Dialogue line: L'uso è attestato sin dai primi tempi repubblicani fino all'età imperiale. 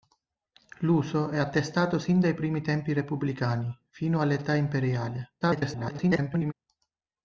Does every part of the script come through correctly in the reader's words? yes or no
no